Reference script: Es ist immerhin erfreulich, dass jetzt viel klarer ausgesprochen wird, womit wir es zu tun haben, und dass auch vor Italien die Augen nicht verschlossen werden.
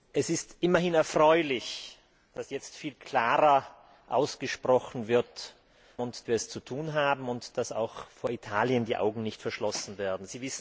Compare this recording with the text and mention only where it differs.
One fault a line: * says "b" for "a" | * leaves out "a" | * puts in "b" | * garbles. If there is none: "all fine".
* says "und" for "womit"